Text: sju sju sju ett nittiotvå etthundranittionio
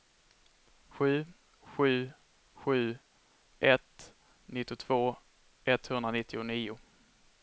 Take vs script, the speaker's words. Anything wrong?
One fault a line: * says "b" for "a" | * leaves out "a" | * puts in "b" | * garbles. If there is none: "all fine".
all fine